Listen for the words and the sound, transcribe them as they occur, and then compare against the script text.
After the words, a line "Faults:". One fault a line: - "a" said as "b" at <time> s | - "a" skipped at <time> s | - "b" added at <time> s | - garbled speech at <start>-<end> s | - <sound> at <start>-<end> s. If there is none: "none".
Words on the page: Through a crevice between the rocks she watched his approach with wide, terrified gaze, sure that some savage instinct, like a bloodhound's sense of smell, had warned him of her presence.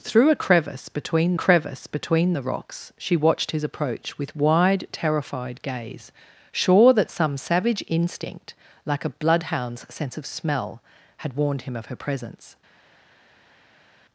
Through a crevice between crevice between the rocks she watched his approach with wide, terrified gaze, sure that some savage instinct, like a bloodhound's sense of smell, had warned him of her presence.
Faults:
- "crevice between" added at 1.3 s